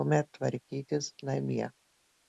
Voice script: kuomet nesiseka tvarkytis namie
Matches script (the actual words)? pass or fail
fail